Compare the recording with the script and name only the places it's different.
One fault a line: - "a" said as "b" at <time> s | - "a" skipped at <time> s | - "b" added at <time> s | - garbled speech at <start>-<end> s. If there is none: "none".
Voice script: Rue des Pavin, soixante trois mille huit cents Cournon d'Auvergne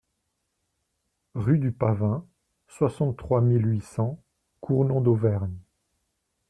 - "des" said as "du" at 1.6 s